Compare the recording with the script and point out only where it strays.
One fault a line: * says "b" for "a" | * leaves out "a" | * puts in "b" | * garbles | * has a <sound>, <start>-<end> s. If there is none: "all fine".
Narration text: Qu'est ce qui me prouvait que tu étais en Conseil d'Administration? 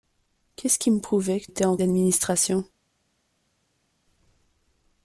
* leaves out "tu"
* leaves out "Conseil"